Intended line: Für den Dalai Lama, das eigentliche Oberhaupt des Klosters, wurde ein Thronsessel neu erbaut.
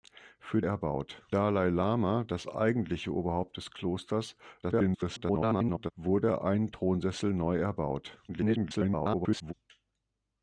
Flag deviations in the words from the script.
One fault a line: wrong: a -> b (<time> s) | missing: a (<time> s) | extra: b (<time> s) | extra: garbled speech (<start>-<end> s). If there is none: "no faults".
wrong: den -> erbaut (0.6 s)
extra: garbled speech (4.6-5.9 s)
extra: garbled speech (8.3-9.5 s)